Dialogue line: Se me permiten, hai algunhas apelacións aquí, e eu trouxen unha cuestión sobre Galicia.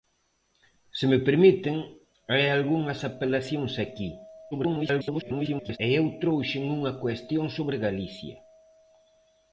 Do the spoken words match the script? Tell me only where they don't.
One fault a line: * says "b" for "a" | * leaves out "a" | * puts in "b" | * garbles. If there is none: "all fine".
* garbles